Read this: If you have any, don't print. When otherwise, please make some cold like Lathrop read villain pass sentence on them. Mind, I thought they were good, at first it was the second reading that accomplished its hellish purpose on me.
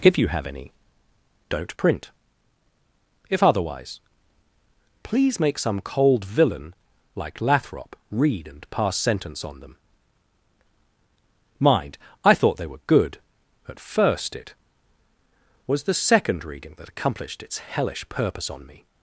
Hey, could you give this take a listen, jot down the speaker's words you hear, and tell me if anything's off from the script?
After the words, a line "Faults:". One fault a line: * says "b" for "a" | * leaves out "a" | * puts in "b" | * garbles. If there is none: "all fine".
If you have any, don't print. If otherwise, please make some cold villain like Lathrop read and pass sentence on them. Mind, I thought they were good, at first it was the second reading that accomplished its hellish purpose on me.
Faults:
* says "If" for "When"
* puts in "villain"
* says "and" for "villain"